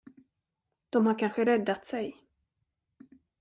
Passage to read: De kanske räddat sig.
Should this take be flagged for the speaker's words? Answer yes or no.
yes